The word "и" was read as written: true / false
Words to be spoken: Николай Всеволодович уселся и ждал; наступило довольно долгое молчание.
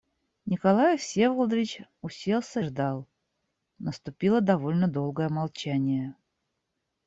false